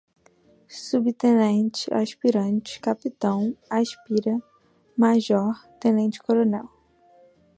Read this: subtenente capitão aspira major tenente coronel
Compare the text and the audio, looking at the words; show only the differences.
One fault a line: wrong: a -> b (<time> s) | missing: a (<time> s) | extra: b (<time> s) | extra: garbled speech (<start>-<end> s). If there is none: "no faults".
extra: aspirante (1.9 s)